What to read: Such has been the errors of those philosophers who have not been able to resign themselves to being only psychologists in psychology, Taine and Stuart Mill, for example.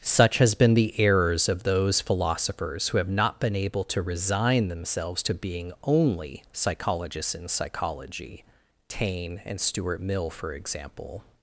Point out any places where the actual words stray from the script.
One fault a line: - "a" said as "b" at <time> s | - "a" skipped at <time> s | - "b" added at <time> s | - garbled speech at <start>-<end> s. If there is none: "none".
none